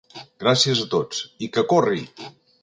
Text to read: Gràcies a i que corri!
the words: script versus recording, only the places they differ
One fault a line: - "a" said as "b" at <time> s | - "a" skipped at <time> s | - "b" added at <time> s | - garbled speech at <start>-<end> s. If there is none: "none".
- "tots" added at 0.9 s